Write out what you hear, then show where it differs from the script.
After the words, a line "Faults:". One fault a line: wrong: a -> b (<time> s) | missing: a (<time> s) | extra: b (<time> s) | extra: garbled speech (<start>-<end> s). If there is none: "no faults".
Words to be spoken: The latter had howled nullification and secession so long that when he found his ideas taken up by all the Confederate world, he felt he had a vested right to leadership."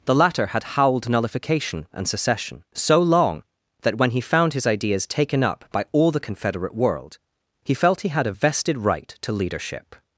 The latter had howled nullification and secession so long that when he found his ideas taken up by all the Confederate world, he felt he had a vested right to leadership."
Faults:
no faults